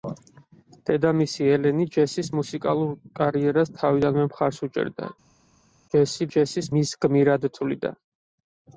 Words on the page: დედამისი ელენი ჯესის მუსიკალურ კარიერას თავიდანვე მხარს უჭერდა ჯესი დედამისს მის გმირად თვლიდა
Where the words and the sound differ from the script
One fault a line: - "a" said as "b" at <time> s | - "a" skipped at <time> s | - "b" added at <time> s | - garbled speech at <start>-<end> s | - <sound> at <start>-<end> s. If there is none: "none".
- "დედამისს" said as "ჯესის" at 6.3 s